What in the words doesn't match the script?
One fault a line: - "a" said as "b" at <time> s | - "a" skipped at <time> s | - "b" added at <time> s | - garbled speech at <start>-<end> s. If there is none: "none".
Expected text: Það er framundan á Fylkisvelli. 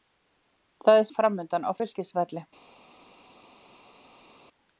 none